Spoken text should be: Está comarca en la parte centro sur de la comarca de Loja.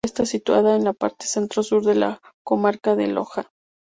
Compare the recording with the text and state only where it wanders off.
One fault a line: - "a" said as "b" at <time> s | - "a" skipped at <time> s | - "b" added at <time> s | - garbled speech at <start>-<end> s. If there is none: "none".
- "comarca" said as "situada" at 0.2 s